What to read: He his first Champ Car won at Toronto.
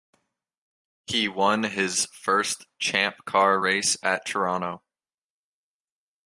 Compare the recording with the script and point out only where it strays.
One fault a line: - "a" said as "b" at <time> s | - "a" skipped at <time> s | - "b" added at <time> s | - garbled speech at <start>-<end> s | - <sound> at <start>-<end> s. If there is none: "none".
- "won" added at 1.3 s
- "won" said as "race" at 3.6 s